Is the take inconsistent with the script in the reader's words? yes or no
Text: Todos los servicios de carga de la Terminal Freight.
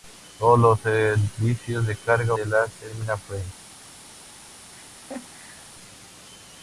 no